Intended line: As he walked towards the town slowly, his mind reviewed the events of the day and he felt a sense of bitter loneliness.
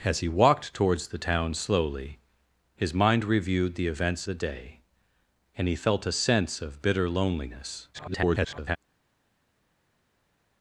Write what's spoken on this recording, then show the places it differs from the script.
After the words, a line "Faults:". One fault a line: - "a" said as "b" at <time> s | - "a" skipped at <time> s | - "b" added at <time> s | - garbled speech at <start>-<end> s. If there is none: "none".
As he walked towards the town slowly, his mind reviewed the events the day and he felt a sense of bitter loneliness. [garbled]
Faults:
- "of" skipped at 4.3 s
- garbled speech at 7.9-8.8 s